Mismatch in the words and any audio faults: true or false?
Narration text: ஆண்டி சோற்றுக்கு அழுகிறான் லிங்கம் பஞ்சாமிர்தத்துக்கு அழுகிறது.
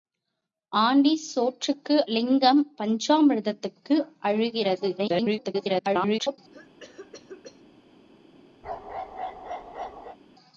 true